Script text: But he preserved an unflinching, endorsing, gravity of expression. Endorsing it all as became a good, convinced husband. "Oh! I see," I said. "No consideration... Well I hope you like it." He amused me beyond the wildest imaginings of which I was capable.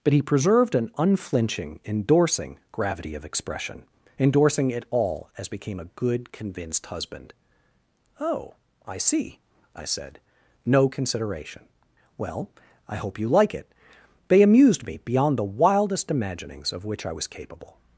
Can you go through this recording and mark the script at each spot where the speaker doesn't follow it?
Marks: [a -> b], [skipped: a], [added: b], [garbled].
But he preserved an unflinching, endorsing, gravity of expression. Endorsing it all as became a good, convinced husband. "Oh! I see," I said. "No consideration... Well I hope you like it." [He -> They] amused me beyond the wildest imaginings of which I was capable.